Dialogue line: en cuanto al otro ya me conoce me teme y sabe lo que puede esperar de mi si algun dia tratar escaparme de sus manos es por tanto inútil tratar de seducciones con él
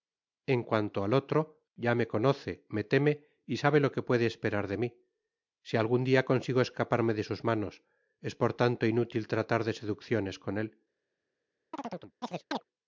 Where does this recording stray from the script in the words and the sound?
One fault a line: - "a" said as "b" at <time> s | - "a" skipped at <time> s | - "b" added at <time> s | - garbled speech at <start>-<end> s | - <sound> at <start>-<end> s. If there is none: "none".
- "tratar" said as "consigo" at 6.2 s
- chirp at 11.7-12.6 s